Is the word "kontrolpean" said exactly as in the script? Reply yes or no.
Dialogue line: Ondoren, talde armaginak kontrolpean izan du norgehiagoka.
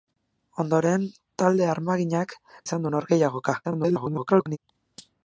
no